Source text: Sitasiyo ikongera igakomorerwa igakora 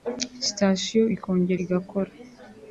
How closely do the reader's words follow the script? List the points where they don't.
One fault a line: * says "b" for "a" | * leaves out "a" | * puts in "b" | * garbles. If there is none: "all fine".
* leaves out "igakomorerwa"